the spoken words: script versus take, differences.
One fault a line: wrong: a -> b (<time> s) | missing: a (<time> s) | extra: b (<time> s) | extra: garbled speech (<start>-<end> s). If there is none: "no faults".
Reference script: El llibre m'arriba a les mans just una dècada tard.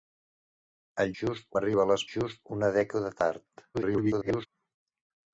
wrong: llibre -> just (1.2 s)
missing: mans (2.1 s)
extra: garbled speech (3.7-4.5 s)